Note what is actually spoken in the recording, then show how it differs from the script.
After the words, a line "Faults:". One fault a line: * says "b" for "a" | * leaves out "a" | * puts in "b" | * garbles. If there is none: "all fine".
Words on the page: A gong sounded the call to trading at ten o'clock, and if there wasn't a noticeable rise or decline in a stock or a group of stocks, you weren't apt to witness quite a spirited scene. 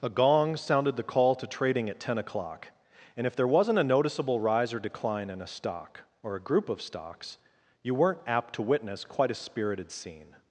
A gong sounded the call to trading at ten o'clock, and if there wasn't a noticeable rise or decline in a stock or a group of stocks, you weren't apt to witness quite a spirited scene.
Faults:
all fine